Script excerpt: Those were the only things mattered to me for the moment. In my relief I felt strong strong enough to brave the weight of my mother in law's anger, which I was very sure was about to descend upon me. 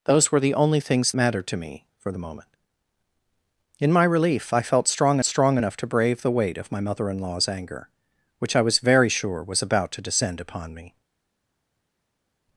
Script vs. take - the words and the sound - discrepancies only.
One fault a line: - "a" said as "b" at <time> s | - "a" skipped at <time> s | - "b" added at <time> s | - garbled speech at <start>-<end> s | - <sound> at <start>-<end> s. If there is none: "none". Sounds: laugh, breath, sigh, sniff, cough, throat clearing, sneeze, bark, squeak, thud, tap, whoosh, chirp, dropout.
none